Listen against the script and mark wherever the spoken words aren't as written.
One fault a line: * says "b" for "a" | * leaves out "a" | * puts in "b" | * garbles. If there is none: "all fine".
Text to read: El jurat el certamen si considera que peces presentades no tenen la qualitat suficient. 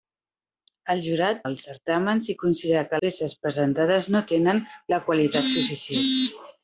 all fine